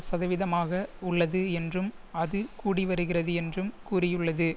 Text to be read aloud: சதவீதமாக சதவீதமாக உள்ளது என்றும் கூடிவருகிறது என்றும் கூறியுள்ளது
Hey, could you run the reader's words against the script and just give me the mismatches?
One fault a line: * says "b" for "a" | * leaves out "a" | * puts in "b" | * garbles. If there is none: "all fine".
* leaves out "சதவீதமாக"
* puts in "அது"